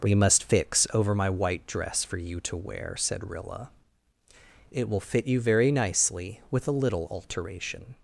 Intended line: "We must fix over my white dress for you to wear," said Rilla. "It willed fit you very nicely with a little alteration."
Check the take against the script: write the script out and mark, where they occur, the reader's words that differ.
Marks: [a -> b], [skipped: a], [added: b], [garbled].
"We must fix over my white dress for you to wear," said Rilla. "It [willed -> will] fit you very nicely with a little alteration."